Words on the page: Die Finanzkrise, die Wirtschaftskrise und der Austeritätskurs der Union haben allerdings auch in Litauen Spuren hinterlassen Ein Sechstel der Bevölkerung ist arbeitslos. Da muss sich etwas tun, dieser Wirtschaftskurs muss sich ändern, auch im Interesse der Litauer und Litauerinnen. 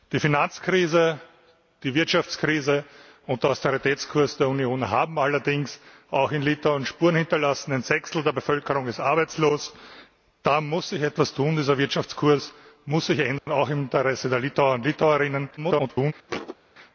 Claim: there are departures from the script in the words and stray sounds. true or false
true